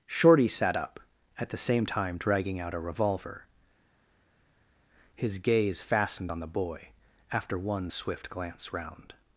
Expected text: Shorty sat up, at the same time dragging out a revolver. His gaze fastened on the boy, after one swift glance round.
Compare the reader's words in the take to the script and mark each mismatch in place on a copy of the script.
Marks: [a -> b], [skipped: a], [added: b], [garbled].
Shorty sat up, at the same time dragging out a revolver. His gaze fastened on the boy, after one swift glance round.